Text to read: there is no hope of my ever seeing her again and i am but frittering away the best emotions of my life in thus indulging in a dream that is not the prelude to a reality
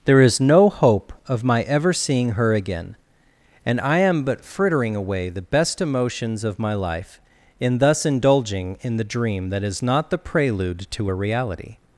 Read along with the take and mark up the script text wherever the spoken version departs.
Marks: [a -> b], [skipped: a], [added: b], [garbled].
there is no hope of my ever seeing her again and i am but frittering away the best emotions of my life in thus indulging in [a -> the] dream that is not the prelude to a reality